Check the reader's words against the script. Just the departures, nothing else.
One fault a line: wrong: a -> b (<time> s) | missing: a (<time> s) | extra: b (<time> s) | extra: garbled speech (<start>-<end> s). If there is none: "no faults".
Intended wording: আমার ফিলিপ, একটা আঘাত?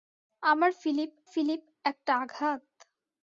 extra: ফিলিপ (1.3 s)